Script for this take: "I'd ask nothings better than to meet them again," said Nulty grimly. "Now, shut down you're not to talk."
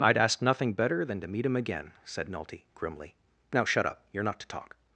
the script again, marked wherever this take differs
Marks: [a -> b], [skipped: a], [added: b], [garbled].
"I'd ask [nothings -> nothing] better than to meet [them -> him] again," said Nulty grimly. "Now, shut [down -> up] you're not to talk."